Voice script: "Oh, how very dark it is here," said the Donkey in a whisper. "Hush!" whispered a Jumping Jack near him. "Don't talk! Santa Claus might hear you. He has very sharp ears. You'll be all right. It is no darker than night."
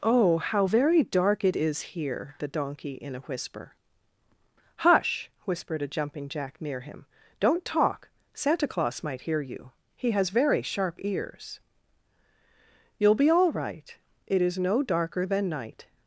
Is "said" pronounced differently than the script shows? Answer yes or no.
yes